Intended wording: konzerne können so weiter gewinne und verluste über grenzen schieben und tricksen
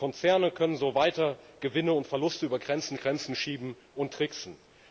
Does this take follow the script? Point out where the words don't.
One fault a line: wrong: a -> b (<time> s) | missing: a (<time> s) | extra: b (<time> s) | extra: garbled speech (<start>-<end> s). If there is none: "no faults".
extra: grenzen (2.9 s)